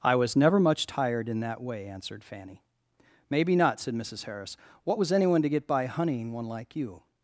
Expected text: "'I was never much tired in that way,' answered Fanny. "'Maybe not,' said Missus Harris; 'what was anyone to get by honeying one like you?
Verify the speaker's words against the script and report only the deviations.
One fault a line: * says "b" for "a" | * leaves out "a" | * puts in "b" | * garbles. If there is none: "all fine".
all fine